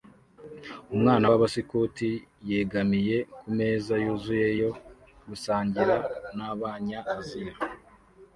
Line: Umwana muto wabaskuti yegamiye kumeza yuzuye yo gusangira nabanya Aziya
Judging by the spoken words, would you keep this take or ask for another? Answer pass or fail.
fail